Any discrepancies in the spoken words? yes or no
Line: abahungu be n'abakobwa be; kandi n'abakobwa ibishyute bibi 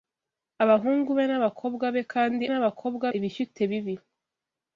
no